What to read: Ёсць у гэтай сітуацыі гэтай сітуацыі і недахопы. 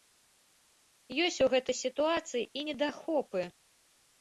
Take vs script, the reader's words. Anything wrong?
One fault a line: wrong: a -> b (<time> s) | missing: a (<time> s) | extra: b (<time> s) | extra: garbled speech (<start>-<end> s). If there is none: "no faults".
missing: гэтай сітуацыі (2.4 s)